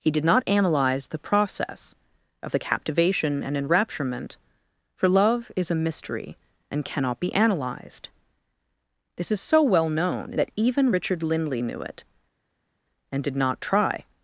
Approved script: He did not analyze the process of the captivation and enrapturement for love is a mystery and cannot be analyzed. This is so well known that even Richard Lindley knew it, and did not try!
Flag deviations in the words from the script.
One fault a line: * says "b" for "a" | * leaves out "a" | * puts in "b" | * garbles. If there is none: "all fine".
all fine